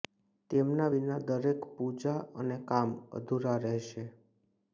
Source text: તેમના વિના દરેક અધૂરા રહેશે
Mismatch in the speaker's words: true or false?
true